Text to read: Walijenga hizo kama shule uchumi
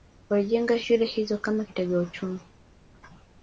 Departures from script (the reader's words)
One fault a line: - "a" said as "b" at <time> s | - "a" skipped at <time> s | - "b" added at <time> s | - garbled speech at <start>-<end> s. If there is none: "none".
- "shule" added at 0.8 s
- "shule" said as "kitega" at 1.6 s